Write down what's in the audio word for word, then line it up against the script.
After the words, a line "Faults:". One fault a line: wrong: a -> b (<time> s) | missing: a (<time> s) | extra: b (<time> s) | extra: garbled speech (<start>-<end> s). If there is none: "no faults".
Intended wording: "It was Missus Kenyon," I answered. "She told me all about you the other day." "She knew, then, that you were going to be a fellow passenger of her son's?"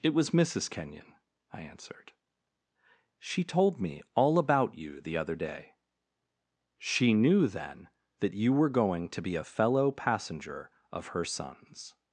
"It was Missus Kenyon," I answered. "She told me all about you the other day." "She knew, then, that you were going to be a fellow passenger of her son's?"
Faults:
no faults